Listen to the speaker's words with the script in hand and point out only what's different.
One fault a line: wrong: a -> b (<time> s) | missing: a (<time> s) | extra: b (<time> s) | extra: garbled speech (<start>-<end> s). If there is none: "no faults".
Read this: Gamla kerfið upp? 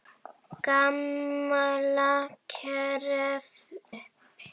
no faults